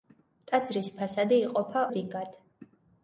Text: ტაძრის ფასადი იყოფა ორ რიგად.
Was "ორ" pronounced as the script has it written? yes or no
no